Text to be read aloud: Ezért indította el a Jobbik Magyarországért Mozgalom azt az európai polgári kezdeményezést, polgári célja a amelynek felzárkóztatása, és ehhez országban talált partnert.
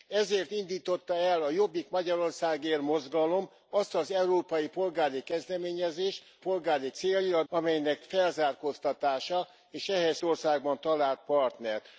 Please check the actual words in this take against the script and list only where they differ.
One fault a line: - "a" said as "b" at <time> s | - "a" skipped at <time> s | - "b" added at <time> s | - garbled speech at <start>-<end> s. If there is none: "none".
none